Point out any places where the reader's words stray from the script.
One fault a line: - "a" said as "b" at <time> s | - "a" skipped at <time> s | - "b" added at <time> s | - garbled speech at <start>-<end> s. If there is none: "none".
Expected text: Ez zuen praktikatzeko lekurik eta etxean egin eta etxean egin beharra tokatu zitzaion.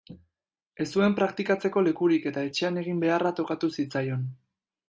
- "eta etxean egin" skipped at 3.1 s